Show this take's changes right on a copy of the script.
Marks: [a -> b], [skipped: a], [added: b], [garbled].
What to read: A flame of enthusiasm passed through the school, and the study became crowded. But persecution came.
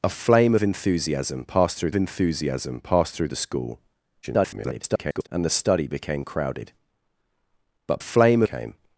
A flame of enthusiasm passed through [added: enthusiasm passed through] the school, [garbled] and the study became crowded. But [persecution -> flame] came.